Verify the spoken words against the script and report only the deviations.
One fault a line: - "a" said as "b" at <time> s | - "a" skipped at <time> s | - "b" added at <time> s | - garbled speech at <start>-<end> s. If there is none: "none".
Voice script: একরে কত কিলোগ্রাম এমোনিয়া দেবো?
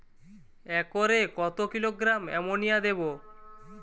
none